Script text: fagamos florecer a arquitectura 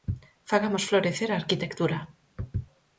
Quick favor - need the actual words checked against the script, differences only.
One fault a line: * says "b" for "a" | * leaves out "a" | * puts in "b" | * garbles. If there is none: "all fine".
all fine